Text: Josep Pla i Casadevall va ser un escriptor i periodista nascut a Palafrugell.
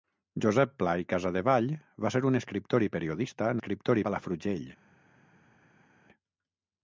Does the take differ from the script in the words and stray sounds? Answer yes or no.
yes